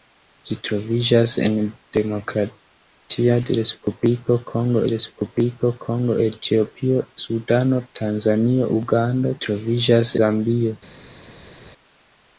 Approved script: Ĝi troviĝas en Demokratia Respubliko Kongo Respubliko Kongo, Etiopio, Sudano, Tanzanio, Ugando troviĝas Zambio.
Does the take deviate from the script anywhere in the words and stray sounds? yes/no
no